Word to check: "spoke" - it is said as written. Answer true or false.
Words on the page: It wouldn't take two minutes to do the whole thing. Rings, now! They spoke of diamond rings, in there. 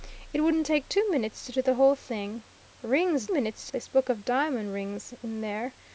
true